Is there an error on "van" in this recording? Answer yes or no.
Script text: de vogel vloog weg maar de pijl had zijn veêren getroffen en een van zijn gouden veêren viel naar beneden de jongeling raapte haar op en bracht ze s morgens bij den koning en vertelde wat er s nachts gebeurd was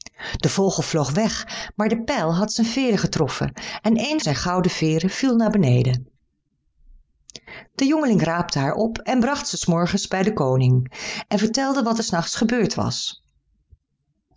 yes